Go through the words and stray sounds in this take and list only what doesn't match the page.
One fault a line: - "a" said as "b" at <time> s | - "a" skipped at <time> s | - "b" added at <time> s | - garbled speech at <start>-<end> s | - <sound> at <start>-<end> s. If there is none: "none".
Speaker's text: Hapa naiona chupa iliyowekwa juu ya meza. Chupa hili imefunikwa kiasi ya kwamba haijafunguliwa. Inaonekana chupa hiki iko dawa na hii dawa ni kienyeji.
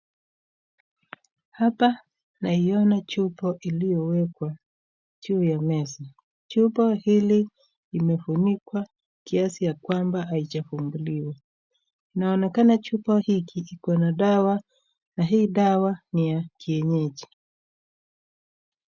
- "na" added at 14.0 s
- "ya" added at 16.3 s